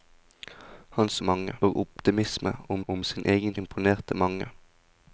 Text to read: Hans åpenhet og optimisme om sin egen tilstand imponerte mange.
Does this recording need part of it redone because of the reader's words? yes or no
yes